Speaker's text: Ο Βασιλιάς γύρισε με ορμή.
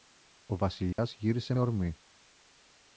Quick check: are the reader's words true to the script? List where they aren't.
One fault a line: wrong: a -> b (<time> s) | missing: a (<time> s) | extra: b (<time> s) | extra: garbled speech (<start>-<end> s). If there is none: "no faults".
missing: με (1.5 s)